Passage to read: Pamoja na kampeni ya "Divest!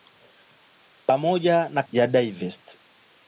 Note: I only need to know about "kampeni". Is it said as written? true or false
false